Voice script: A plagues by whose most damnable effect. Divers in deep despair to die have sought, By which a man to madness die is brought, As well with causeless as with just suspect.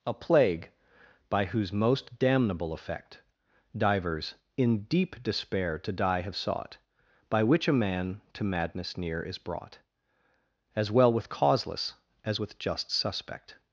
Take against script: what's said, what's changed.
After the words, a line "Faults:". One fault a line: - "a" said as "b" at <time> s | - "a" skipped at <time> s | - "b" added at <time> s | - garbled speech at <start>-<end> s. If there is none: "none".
A plague by whose most damnable effect. Divers in deep despair to die have sought, By which a man to madness near is brought, As well with causeless as with just suspect.
Faults:
- "plagues" said as "plague" at 0.1 s
- "die" said as "near" at 9.0 s